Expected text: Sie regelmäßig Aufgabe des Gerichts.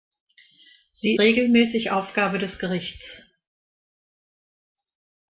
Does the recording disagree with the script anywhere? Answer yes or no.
no